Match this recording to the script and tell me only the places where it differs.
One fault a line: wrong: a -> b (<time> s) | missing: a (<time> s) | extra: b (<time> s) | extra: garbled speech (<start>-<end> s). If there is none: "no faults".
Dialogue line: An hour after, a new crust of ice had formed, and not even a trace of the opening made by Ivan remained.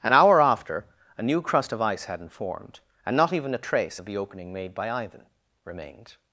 wrong: had -> hadn't (2.0 s)